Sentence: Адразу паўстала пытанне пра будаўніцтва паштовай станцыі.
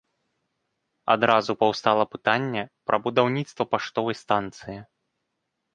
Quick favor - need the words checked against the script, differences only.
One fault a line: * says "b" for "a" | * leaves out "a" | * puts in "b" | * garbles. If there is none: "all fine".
all fine